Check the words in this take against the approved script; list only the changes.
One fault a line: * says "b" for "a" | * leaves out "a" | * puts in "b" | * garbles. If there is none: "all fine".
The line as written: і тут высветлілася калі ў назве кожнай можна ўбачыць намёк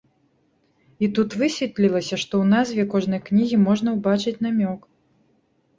* says "што" for "калі"
* puts in "кнігі"